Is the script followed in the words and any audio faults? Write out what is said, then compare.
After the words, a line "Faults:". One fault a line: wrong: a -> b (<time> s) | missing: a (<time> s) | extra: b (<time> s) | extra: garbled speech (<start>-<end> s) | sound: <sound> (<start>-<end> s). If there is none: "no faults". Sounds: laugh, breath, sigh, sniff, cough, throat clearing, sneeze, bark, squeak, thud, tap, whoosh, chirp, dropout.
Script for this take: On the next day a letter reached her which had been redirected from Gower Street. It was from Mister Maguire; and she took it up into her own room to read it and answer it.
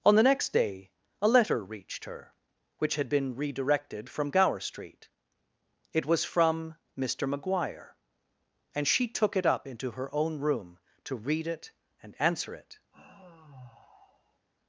On the next day a letter reached her which had been redirected from Gower Street. It was from Mister Maguire; and she took it up into her own room to read it and answer it.
Faults:
sound: sigh (12.9-14.5 s)